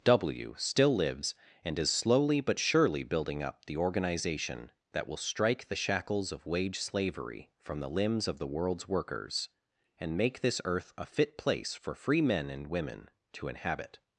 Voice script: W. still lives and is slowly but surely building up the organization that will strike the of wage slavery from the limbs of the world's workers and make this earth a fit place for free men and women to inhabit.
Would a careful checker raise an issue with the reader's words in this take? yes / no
yes